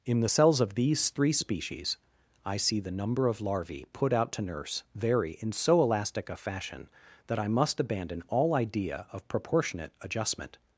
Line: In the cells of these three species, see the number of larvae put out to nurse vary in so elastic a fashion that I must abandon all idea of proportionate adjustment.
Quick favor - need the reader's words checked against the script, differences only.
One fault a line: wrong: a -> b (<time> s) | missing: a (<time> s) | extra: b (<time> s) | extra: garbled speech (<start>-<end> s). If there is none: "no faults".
extra: I (2.4 s)